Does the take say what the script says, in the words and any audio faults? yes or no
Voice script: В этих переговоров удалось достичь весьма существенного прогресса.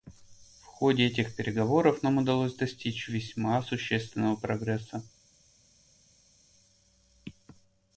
no